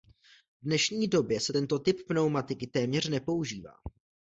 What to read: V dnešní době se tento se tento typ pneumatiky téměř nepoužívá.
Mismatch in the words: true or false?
true